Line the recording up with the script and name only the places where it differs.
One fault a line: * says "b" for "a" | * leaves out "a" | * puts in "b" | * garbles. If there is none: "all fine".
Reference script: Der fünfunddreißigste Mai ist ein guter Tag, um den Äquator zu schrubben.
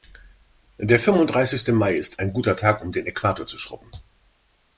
all fine